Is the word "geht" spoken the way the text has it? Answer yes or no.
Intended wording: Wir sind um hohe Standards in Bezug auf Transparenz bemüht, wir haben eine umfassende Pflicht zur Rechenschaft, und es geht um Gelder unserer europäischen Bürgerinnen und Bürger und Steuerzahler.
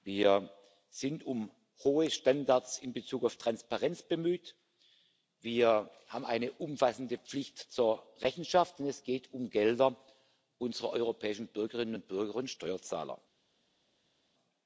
yes